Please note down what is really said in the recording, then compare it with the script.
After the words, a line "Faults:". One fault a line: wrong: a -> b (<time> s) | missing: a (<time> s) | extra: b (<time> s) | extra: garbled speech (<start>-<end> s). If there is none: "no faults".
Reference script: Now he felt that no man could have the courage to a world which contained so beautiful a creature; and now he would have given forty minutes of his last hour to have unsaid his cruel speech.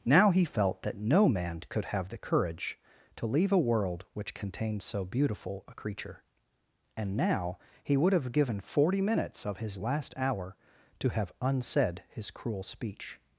Now he felt that no man could have the courage to leave a world which contained so beautiful a creature; and now he would have given forty minutes of his last hour to have unsaid his cruel speech.
Faults:
extra: leave (3.3 s)